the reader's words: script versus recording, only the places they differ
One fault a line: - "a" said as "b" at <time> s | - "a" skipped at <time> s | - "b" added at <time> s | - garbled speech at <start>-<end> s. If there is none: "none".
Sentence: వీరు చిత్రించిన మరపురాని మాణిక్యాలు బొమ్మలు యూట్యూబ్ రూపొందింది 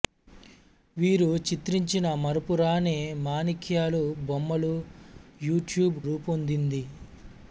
none